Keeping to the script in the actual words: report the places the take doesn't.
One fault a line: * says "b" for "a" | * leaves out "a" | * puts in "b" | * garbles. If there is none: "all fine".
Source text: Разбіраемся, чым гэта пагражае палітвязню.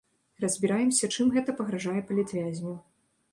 all fine